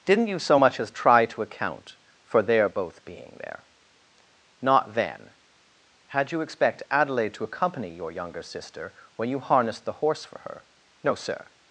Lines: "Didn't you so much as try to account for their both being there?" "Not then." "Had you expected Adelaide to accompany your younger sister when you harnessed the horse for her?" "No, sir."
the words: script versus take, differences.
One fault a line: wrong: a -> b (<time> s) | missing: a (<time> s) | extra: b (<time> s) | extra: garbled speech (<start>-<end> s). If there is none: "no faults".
wrong: expected -> expect (6.4 s)